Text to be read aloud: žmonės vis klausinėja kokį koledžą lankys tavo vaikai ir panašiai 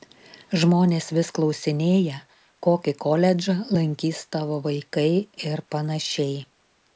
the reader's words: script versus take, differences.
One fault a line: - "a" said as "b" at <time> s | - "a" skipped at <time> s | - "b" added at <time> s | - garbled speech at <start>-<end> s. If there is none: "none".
none